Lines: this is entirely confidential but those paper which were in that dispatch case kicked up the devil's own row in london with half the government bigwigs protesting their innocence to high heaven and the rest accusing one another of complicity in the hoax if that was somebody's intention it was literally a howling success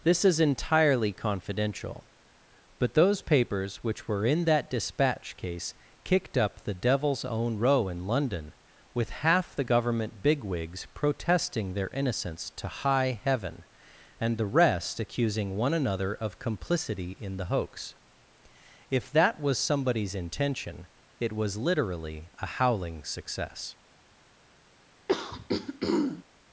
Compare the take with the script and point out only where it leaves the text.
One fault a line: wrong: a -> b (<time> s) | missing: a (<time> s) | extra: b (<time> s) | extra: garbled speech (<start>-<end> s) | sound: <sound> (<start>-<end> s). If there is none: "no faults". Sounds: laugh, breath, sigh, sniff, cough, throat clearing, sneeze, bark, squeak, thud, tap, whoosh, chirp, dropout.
wrong: paper -> papers (3.2 s)
sound: throat clearing (25.1-26.2 s)